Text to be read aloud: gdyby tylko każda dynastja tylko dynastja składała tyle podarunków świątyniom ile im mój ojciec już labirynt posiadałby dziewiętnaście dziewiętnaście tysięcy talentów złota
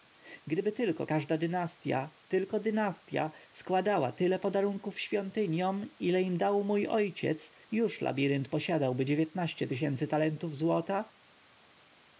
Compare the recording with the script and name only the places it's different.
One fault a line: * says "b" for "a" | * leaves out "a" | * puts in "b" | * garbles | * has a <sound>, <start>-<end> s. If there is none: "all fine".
* puts in "dał"
* leaves out "dziewiętnaście"